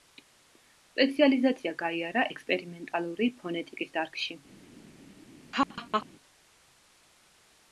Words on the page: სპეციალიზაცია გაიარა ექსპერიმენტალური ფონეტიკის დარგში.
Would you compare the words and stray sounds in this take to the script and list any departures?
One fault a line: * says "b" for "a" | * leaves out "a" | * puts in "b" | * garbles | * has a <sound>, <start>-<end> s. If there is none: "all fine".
* has a laugh, 5.5-6.1 s